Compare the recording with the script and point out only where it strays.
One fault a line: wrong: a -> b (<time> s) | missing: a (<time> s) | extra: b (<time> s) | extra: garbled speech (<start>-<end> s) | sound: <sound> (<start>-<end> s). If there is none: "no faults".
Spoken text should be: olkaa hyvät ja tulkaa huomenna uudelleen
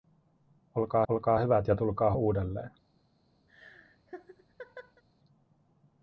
extra: olkaa (1.1 s)
missing: huomenna (2.1 s)
sound: laugh (3.5-5.0 s)